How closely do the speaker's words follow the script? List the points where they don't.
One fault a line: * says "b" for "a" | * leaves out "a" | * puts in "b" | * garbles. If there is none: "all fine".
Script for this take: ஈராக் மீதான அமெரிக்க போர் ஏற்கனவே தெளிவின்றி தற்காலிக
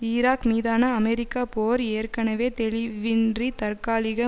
all fine